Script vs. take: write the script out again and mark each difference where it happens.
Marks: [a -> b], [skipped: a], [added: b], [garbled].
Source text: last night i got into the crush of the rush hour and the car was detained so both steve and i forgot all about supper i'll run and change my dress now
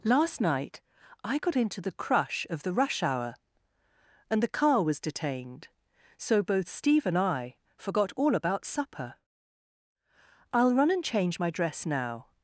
last night i got into the crush of the rush hour and the car was detained so both steve and i forgot all about supper i'll run and change my dress now